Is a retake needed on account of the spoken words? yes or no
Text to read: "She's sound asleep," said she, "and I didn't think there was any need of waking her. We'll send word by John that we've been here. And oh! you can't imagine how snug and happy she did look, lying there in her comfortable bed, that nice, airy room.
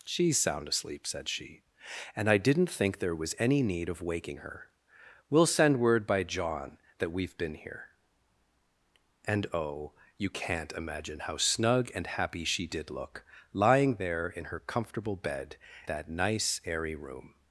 no